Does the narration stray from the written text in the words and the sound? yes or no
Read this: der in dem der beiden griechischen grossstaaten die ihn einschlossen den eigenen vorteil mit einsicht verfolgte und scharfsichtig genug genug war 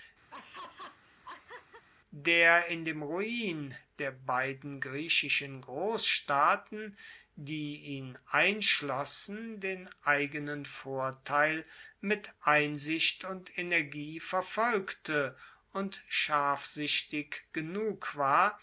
yes